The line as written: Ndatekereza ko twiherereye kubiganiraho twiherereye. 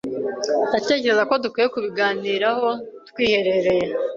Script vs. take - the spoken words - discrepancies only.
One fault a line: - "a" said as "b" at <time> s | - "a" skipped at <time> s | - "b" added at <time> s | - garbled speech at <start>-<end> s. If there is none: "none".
- "twiherereye" said as "dukwiye" at 1.4 s